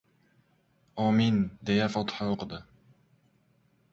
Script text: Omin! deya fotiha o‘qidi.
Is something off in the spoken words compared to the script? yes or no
no